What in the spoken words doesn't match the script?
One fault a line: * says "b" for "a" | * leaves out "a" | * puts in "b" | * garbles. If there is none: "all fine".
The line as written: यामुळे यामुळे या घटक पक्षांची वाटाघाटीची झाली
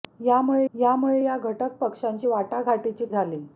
all fine